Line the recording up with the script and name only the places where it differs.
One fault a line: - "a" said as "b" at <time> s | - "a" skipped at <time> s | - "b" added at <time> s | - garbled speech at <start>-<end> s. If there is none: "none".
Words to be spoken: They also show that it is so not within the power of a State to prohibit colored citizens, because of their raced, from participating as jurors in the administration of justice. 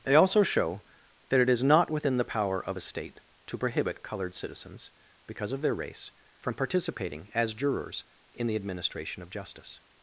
- "so" skipped at 1.6 s
- "raced" said as "race" at 5.7 s